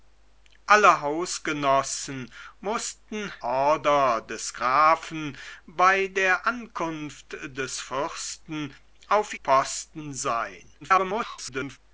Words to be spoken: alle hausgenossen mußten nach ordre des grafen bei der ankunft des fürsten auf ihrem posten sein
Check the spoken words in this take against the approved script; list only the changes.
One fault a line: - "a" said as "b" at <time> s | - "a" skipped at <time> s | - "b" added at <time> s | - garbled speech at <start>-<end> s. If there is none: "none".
- "nach" skipped at 3.3 s
- "ihrem" skipped at 9.3 s
- garbled speech at 10.8-11.8 s